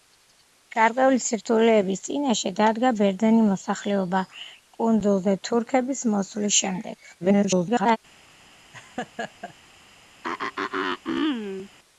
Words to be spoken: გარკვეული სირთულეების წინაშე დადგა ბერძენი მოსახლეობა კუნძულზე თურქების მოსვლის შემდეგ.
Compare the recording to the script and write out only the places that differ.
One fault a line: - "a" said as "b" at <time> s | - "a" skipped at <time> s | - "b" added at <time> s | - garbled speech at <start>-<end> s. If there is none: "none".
- garbled speech at 7.2-8.0 s